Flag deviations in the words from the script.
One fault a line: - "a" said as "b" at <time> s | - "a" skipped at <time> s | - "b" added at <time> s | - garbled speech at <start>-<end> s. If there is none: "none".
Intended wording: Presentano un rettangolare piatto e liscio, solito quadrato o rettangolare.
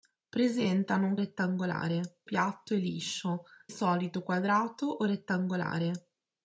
none